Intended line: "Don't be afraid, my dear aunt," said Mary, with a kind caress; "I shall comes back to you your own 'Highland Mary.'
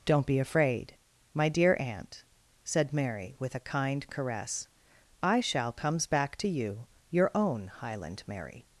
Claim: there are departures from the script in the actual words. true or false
false